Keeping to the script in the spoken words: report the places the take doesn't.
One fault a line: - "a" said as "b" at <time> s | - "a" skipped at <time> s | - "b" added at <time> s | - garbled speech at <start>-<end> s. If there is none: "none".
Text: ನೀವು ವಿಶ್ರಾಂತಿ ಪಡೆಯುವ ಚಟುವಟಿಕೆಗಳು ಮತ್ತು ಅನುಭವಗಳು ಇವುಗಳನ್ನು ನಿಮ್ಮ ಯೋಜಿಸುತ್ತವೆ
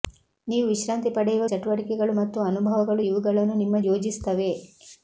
none